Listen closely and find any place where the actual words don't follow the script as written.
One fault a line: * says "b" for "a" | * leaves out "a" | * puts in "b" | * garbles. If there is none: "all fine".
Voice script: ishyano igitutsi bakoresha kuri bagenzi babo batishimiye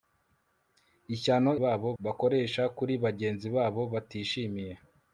* says "babo" for "igitutsi"